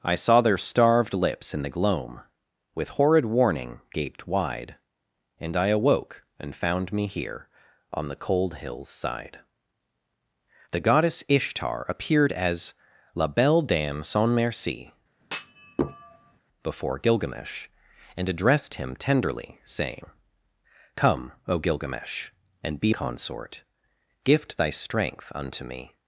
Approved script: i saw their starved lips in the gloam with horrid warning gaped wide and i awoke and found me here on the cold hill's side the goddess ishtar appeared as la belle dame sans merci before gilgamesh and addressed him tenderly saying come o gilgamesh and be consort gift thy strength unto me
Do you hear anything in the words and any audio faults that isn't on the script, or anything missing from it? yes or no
yes